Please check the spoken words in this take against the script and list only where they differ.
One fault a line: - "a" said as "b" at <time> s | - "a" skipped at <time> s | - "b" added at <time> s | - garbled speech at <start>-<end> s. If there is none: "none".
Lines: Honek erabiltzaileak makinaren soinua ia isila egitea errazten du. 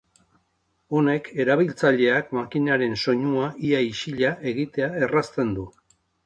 none